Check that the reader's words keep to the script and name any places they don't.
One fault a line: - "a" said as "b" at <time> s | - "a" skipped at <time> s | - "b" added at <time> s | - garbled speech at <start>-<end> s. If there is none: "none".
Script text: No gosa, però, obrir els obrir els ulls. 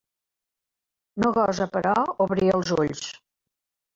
- "obrir els" skipped at 2.7 s